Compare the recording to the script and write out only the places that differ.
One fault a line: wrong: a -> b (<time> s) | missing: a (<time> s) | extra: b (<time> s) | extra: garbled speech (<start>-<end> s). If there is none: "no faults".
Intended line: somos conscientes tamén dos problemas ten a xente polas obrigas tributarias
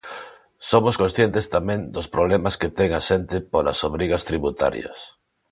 extra: que (2.6 s)